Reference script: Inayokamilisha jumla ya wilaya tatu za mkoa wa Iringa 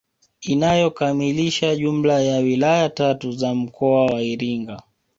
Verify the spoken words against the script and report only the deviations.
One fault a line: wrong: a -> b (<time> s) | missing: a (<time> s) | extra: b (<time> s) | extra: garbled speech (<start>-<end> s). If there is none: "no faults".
no faults